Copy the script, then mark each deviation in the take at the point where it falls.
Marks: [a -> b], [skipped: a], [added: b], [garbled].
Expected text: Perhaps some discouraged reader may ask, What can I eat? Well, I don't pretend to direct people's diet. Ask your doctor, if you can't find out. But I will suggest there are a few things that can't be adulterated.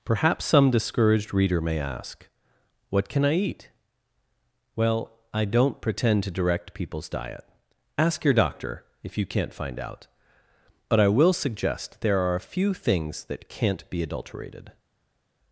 Perhaps some discouraged reader may ask, What can I eat? Well, I don't pretend to direct people's diet. Ask your doctor, if you can't find out. But I will suggest there are a few things that can't be adulterated.